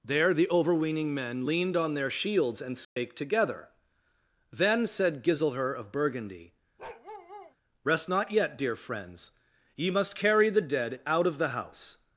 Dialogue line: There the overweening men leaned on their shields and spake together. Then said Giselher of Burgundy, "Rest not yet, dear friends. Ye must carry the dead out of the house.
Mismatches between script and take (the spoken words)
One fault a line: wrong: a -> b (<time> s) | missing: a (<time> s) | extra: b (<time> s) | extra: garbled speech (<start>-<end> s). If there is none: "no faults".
no faults